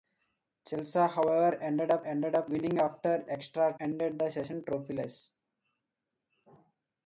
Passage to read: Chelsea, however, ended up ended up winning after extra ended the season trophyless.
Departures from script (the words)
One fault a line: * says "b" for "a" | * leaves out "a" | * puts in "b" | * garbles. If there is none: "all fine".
all fine